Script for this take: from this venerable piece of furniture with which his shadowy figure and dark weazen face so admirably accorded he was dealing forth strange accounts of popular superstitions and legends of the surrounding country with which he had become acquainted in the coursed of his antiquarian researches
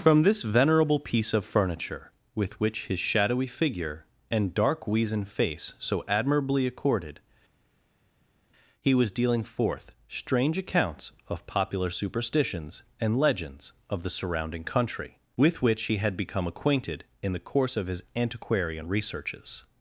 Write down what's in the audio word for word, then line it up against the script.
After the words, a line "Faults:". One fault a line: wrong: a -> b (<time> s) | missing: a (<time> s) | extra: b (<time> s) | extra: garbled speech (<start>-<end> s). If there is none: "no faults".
from this venerable piece of furniture with which his shadowy figure and dark weazen face so admirably accorded he was dealing forth strange accounts of popular superstitions and legends of the surrounding country with which he had become acquainted in the course of his antiquarian researches
Faults:
wrong: coursed -> course (17.5 s)